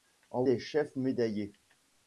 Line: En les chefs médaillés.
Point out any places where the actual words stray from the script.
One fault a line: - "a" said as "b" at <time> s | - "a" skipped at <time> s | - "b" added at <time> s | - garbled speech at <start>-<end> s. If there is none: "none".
none